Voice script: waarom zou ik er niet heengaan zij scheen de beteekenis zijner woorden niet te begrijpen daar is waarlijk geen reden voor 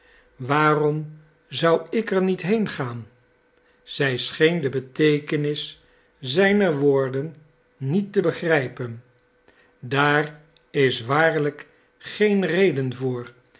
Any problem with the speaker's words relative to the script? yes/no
no